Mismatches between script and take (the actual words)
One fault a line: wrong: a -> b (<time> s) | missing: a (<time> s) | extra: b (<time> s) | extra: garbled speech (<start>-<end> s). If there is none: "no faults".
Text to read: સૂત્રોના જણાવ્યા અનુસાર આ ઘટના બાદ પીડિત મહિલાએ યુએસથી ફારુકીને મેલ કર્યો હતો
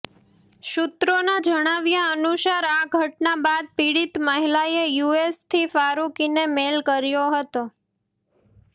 no faults